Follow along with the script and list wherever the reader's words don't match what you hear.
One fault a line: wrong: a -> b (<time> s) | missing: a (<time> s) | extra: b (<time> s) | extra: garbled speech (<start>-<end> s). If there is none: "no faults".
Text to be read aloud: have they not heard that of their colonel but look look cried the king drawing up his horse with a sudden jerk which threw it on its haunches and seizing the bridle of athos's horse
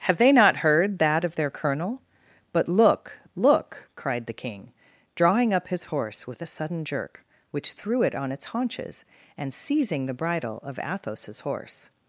no faults